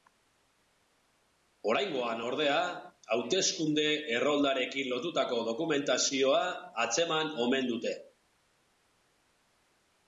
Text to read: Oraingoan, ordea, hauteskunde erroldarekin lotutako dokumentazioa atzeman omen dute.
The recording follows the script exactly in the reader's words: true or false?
true